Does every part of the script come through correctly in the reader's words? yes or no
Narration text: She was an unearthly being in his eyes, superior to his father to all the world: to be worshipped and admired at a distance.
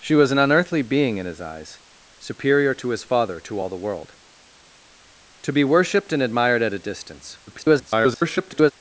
no